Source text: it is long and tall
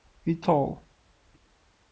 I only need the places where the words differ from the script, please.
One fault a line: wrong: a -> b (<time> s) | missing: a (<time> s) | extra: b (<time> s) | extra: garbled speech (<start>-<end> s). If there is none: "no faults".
missing: is long and (0.5 s)